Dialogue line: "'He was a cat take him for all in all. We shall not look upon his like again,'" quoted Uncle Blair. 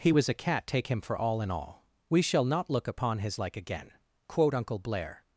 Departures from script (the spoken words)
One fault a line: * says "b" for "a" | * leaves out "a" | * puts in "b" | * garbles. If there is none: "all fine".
* says "quote" for "quoted"